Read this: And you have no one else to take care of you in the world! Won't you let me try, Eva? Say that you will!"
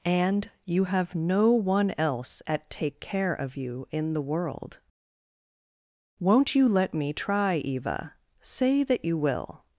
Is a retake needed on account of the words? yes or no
yes